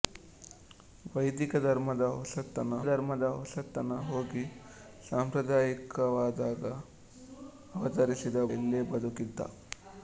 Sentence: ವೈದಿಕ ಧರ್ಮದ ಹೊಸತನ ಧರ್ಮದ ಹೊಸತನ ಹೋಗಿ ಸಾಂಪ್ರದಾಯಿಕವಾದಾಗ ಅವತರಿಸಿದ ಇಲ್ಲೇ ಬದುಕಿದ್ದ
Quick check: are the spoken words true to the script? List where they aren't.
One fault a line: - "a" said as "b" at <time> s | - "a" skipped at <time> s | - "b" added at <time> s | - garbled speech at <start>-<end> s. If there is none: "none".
none